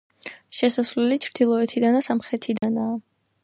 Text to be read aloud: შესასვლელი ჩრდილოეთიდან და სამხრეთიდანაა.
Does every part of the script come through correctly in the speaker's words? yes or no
yes